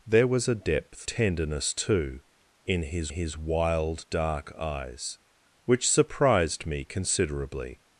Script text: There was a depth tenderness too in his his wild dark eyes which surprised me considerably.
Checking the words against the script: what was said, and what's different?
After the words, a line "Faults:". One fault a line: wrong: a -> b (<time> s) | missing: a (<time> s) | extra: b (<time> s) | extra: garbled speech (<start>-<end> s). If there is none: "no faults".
There was a depth tenderness too in his his wild dark eyes which surprised me considerably.
Faults:
no faults